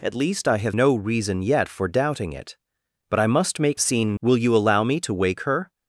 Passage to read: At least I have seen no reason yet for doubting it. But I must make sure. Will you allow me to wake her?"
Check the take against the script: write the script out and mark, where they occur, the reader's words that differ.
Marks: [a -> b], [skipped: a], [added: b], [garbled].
At least I have [skipped: seen] no reason yet for doubting it. But I must make [sure. -> seen] Will you allow me to wake her?"